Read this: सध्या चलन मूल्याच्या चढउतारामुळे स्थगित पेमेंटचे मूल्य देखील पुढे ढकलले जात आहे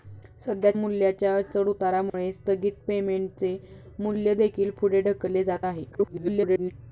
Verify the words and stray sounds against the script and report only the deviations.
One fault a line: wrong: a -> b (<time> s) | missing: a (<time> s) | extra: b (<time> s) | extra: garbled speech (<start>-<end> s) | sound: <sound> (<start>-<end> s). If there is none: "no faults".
missing: चलन (0.7 s)
sound: dropout (2.1-2.1 s)
extra: garbled speech (5.9-6.7 s)